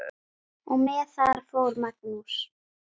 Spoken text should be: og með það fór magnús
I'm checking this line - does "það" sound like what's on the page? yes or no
yes